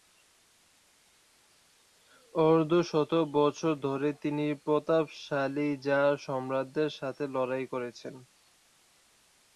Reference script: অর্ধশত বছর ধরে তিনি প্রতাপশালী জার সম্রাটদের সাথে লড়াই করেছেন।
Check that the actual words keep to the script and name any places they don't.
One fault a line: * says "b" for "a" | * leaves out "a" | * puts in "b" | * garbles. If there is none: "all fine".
all fine